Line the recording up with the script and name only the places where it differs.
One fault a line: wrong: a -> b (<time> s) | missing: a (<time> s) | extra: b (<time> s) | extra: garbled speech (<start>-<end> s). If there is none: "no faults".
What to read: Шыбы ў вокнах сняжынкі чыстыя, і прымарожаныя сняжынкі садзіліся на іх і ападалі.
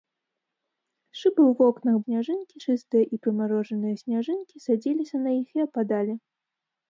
no faults